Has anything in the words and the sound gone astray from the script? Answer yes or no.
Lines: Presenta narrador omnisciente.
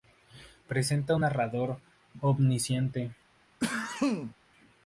yes